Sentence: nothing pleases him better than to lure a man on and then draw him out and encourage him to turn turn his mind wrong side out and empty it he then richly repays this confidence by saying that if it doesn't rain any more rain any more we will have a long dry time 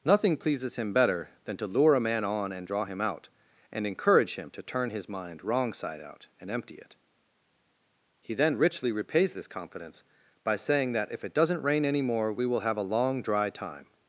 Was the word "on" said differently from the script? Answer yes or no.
no